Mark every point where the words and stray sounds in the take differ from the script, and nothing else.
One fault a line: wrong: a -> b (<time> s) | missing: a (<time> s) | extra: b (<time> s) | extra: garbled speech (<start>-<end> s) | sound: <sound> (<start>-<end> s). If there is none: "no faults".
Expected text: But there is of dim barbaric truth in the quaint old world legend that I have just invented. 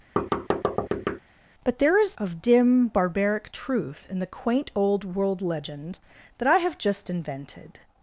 sound: thud (0.2-1.2 s)